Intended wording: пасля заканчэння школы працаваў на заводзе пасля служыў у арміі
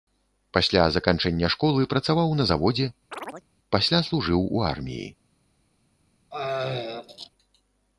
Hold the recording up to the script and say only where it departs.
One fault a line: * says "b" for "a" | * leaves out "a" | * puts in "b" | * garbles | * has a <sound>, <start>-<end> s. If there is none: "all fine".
* has a chirp, 3.1-3.5 s
* has a throat clearing, 6.3-7.3 s